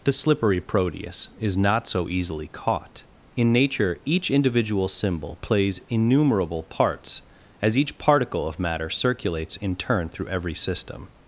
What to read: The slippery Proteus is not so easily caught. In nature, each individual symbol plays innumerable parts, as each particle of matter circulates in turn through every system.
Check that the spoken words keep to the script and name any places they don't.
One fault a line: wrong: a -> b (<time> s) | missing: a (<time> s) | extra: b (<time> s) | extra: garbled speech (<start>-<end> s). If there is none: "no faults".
no faults